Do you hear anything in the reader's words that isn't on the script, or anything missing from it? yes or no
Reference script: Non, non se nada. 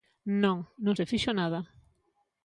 yes